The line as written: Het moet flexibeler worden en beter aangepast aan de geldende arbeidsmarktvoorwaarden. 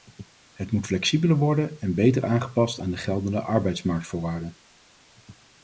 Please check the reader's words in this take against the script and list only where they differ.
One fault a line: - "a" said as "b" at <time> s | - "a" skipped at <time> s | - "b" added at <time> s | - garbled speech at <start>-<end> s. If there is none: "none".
none